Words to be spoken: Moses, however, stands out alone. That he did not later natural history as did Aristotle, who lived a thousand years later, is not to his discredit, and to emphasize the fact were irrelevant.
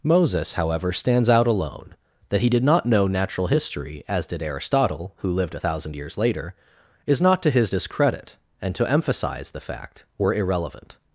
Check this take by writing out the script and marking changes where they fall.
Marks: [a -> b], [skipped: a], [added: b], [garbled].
Moses, however, stands out alone. That he did not [later -> know] natural history as did Aristotle, who lived a thousand years later, is not to his discredit, and to emphasize the fact were irrelevant.